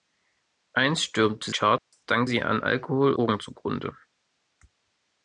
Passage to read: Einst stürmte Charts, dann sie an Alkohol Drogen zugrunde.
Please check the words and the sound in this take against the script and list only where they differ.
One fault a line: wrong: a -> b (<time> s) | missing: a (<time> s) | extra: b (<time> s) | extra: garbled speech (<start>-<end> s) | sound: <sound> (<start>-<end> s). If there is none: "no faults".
sound: dropout (1.8-1.9 s)